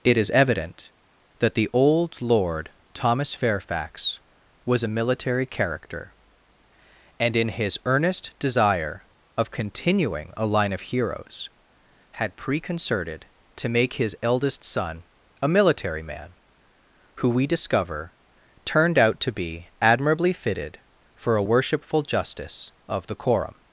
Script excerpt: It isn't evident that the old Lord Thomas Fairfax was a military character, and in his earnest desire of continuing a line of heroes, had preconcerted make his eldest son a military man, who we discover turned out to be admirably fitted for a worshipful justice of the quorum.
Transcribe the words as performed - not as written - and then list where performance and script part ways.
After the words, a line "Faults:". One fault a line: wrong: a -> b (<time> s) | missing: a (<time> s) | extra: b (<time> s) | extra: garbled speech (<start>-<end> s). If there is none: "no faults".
It is evident that the old Lord Thomas Fairfax was a military character, and in his earnest desire of continuing a line of heroes, had preconcerted to make his eldest son a military man, who we discover turned out to be admirably fitted for a worshipful justice of the quorum.
Faults:
wrong: isn't -> is (0.2 s)
extra: to (13.6 s)